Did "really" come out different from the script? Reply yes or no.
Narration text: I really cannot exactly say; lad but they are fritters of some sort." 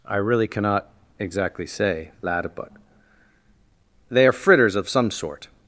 no